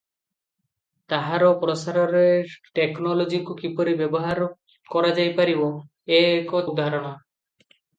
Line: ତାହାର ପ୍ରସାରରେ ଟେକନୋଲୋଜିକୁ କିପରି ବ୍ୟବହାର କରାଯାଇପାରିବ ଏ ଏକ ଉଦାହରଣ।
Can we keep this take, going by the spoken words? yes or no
yes